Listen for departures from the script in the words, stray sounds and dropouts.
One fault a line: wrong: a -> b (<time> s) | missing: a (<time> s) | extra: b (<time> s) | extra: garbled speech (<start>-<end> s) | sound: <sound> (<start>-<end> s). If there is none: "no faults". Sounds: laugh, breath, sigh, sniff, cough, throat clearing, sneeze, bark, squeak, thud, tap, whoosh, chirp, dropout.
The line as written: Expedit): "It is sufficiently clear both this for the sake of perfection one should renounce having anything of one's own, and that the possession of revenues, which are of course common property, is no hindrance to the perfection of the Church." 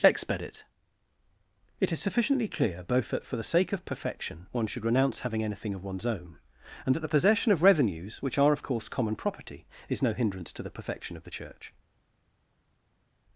wrong: this -> that (3.1 s)